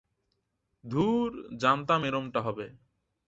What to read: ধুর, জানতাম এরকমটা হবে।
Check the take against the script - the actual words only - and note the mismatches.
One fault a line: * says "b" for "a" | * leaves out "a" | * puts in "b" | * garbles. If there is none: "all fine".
all fine